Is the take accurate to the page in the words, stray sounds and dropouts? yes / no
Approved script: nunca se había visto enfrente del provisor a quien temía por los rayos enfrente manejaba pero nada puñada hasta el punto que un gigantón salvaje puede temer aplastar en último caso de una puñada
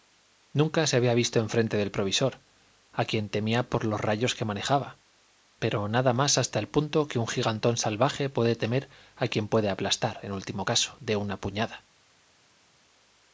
no